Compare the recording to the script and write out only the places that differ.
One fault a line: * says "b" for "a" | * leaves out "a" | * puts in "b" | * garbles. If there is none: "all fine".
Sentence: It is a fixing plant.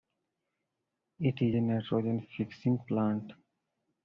* puts in "nitrogen"